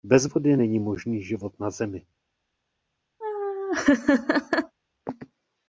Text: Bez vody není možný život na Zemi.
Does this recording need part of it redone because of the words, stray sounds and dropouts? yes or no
yes